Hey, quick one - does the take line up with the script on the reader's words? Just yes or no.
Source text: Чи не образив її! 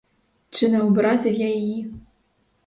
no